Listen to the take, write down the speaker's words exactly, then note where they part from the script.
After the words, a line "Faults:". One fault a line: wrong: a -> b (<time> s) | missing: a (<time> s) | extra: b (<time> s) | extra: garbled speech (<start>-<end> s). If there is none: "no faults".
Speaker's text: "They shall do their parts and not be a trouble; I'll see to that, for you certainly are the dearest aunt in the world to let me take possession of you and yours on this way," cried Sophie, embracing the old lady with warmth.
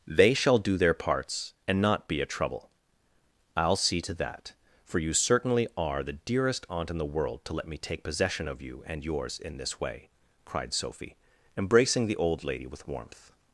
"They shall do their parts and not be a trouble; I'll see to that, for you certainly are the dearest aunt in the world to let me take possession of you and yours in this way," cried Sophie, embracing the old lady with warmth.
Faults:
wrong: on -> in (9.4 s)